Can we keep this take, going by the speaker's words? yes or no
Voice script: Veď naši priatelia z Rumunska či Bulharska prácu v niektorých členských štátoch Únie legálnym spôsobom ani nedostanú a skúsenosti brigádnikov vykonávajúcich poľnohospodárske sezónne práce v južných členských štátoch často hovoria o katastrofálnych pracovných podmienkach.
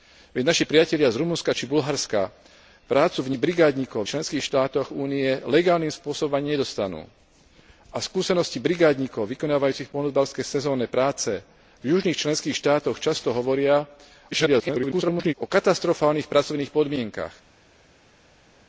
no